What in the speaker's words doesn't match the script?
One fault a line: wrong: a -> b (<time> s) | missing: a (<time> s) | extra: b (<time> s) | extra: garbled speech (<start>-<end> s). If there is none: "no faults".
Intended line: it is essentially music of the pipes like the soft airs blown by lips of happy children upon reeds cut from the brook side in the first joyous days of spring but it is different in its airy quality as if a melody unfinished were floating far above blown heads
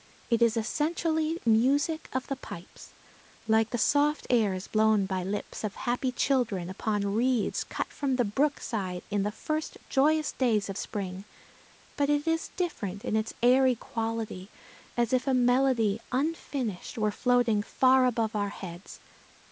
wrong: blown -> our (18.3 s)